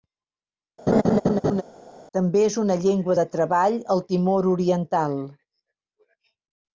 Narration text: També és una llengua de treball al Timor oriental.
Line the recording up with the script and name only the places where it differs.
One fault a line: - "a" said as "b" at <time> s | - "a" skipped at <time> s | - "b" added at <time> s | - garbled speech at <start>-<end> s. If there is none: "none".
none